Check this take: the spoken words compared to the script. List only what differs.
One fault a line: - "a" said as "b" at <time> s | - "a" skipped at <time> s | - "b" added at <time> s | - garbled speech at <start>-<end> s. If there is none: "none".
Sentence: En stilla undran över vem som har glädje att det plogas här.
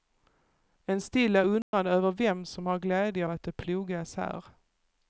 none